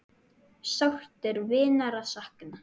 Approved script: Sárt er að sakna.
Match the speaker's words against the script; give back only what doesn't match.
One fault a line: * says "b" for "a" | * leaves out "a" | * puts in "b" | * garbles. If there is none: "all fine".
* puts in "vinar"